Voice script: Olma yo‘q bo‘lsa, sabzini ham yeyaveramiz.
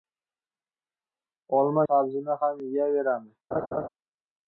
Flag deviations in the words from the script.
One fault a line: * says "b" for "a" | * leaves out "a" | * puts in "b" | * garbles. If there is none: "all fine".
* leaves out "yo‘q bo‘lsa"